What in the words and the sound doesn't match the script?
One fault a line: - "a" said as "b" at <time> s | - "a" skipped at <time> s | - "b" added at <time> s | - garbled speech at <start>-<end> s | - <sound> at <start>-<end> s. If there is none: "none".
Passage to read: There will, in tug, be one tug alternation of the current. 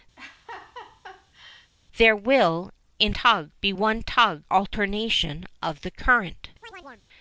- laugh at 0.2-1.7 s
- chirp at 6.6-7.1 s